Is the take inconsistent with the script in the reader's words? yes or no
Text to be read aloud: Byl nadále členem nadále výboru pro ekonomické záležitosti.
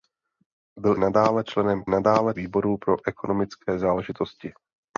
no